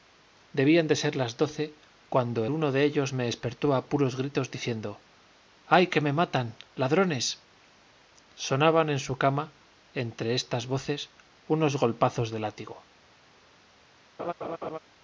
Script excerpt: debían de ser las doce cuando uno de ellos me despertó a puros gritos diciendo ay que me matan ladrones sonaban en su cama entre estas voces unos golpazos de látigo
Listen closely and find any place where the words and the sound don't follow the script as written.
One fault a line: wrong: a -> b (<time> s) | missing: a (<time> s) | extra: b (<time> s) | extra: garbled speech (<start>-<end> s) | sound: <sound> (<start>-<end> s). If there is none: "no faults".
sound: laugh (14.2-14.8 s)